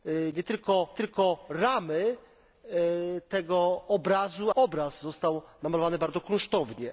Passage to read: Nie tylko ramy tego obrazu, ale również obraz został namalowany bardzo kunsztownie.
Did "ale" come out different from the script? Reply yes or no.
yes